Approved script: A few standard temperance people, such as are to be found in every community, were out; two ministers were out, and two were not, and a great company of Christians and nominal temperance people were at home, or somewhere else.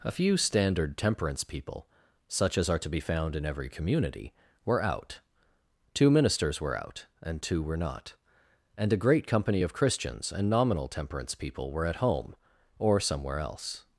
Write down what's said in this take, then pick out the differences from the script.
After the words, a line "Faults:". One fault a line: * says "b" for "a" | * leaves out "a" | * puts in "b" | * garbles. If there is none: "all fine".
A few standard temperance people, such as are to be found in every community, were out; two ministers were out, and two were not, and a great company of Christians and nominal temperance people were at home, or somewhere else.
Faults:
all fine